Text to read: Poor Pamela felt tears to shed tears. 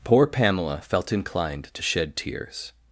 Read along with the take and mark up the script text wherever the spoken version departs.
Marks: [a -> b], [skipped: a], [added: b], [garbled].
Poor Pamela felt [tears -> inclined] to shed tears.